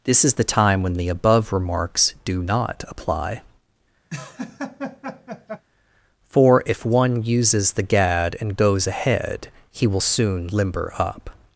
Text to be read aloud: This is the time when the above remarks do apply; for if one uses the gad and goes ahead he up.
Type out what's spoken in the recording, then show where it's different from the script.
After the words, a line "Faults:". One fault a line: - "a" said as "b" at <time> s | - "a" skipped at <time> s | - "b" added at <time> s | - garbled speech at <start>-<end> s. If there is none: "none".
This is the time when the above remarks do not apply; for if one uses the gad and goes ahead he will soon limber up.
Faults:
- "not" added at 2.4 s
- "will soon limber" added at 9.8 s